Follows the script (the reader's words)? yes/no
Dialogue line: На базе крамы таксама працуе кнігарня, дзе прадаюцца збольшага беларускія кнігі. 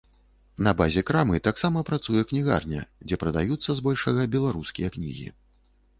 yes